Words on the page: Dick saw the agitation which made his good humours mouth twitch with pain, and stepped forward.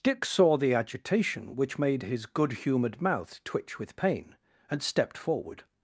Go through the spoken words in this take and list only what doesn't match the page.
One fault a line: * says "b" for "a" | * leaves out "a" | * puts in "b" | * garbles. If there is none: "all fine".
* says "humoured" for "humours"